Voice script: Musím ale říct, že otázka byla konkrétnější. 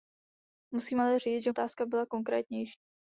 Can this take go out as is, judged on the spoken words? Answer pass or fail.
pass